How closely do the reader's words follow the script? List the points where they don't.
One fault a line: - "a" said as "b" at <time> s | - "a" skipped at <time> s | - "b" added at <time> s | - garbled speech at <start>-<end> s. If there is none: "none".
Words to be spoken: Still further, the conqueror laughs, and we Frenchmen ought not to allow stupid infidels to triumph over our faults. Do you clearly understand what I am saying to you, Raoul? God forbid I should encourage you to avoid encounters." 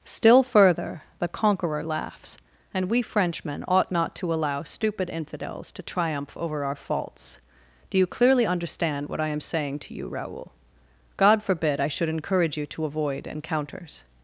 none